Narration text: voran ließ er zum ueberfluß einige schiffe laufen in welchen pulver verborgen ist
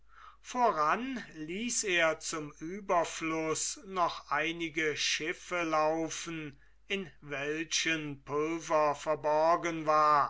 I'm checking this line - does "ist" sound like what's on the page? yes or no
no